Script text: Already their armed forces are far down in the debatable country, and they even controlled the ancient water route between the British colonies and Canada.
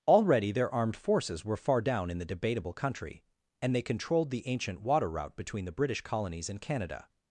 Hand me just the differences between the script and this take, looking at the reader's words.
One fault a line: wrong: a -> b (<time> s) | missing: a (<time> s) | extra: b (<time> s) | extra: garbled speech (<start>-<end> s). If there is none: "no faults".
wrong: are -> were (1.4 s)
missing: even (3.8 s)